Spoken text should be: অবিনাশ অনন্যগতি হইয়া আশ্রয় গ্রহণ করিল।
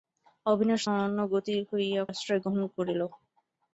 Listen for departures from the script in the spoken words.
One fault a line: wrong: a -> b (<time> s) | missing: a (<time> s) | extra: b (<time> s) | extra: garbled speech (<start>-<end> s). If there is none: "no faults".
no faults